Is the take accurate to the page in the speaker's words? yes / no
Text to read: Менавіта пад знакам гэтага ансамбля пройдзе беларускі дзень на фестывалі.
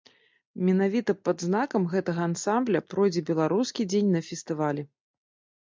yes